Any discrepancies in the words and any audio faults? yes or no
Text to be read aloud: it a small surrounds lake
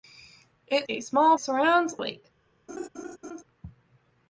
yes